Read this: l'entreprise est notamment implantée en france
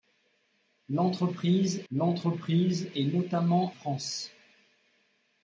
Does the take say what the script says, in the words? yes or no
no